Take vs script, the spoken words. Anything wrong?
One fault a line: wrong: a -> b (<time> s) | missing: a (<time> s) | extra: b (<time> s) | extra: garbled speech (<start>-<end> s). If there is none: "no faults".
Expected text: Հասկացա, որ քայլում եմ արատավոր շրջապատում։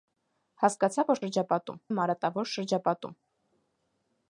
wrong: քայլում -> շրջապատում (1.2 s)